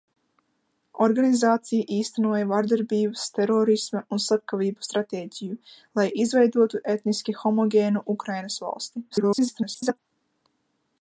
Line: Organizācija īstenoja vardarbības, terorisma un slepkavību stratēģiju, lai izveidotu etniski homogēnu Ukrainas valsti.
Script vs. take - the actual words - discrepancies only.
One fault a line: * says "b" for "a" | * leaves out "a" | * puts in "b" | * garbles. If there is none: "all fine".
* garbles